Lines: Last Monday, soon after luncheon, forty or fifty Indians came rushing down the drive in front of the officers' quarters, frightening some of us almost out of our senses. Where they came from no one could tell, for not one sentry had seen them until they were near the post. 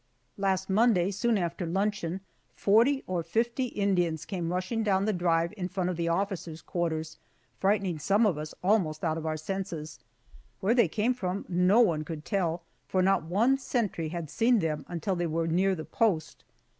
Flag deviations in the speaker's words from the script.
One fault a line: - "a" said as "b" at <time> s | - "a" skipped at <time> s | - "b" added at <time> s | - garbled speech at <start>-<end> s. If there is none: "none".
none